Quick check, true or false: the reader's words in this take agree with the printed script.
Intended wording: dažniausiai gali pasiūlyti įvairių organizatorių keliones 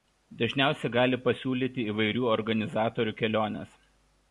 true